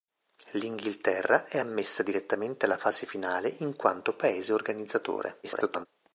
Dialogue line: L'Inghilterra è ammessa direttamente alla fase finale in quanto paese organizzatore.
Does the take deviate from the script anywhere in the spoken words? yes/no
yes